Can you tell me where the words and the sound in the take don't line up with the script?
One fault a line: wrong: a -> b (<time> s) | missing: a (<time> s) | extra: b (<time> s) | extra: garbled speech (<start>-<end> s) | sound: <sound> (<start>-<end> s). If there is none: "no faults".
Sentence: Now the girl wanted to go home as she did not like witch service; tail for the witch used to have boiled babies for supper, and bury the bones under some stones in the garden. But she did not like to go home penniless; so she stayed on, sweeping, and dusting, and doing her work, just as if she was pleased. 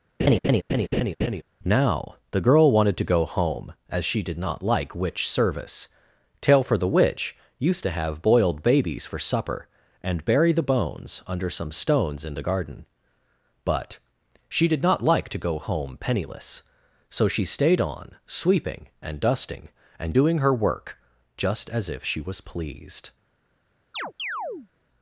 sound: laugh (0.2-1.4 s)
sound: chirp (23.9-24.7 s)